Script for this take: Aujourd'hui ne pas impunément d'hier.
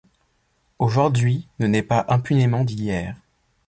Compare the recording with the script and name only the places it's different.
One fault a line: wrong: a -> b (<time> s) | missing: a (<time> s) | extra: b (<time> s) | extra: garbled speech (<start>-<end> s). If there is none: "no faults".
extra: naît (1.7 s)